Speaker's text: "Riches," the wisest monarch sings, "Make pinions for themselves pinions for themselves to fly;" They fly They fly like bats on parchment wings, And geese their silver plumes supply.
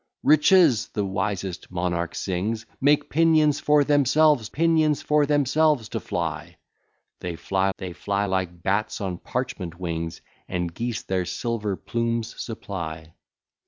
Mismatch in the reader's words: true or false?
false